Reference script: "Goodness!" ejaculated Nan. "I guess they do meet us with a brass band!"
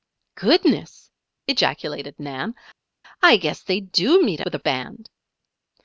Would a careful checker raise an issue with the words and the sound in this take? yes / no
yes